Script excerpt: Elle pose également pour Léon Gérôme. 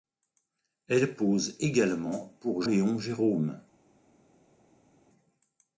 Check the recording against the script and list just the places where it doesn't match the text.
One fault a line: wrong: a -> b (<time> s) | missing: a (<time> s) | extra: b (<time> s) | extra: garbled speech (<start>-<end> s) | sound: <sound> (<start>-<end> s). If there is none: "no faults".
no faults